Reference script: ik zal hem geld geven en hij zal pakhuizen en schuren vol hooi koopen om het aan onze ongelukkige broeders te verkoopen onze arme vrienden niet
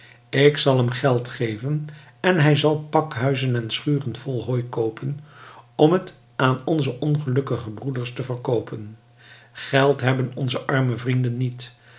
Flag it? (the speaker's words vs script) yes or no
yes